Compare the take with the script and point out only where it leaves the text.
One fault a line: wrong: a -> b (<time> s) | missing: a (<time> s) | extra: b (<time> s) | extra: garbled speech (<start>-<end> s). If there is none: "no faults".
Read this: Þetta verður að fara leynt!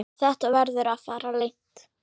no faults